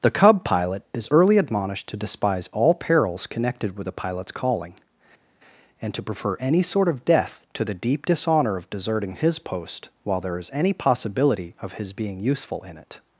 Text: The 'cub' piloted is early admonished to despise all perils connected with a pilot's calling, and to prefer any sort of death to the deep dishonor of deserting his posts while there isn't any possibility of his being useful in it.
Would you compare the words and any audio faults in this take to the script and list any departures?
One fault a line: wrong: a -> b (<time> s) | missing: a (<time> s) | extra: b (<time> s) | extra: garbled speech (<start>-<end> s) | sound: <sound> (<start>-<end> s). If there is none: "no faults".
wrong: piloted -> pilot (0.4 s)
wrong: posts -> post (9.4 s)
wrong: isn't -> is (10.4 s)